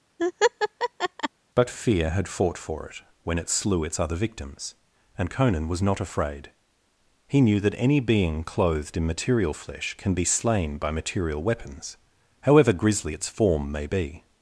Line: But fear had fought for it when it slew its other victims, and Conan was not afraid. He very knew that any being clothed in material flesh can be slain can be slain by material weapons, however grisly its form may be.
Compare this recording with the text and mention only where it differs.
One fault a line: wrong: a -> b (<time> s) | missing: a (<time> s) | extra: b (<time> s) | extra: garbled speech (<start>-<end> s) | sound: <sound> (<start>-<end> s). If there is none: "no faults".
sound: laugh (0.2-1.3 s)
missing: very (7.4 s)
missing: can be slain (10.8 s)